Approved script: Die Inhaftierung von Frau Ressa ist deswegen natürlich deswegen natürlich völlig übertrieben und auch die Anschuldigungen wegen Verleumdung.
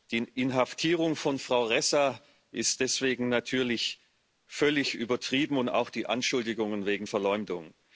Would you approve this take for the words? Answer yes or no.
no